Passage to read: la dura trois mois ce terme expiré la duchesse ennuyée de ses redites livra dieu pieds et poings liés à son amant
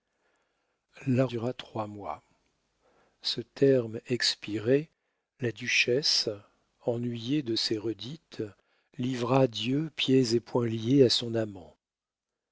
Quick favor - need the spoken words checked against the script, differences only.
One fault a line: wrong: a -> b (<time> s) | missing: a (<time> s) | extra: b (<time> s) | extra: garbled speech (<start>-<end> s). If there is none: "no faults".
no faults